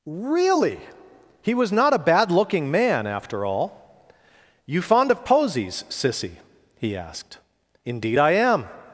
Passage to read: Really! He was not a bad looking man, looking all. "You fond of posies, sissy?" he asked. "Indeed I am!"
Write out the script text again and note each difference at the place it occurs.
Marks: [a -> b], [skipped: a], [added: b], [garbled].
Really! He was not a bad looking man, [looking -> after] all. "You fond of posies, sissy?" he asked. "Indeed I am!"